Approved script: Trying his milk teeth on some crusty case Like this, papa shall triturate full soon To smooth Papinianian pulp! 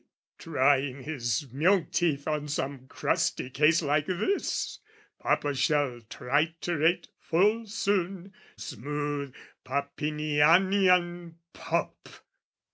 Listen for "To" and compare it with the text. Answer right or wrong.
wrong